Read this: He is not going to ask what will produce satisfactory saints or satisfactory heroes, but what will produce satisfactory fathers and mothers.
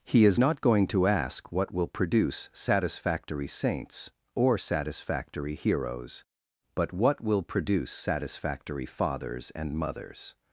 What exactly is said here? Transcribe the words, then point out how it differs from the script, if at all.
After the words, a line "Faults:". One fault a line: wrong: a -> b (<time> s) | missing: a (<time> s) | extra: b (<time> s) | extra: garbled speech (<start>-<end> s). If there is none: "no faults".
He is not going to ask what will produce satisfactory saints or satisfactory heroes, but what will produce satisfactory fathers and mothers.
Faults:
no faults